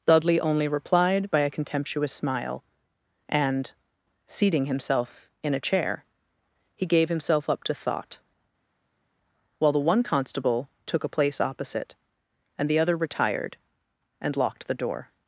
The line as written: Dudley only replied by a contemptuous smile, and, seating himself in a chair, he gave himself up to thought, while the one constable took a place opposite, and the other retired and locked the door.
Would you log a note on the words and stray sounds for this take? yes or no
no